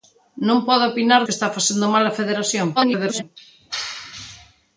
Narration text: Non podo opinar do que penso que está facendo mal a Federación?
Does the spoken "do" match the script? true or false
false